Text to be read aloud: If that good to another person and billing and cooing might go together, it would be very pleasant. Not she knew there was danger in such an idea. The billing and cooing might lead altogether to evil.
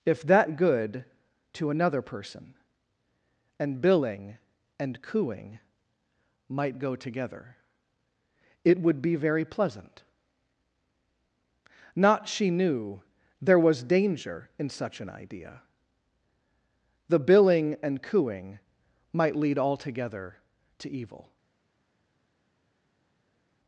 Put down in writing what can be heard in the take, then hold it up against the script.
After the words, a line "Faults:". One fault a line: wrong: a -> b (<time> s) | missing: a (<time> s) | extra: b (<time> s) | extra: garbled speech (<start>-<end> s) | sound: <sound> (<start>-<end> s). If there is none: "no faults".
If that good to another person and billing and cooing might go together, it would be very pleasant. Not she knew there was danger in such an idea. The billing and cooing might lead altogether to evil.
Faults:
no faults